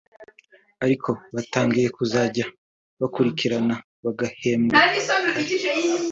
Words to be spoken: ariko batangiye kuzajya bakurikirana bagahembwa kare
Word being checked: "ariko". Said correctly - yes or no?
yes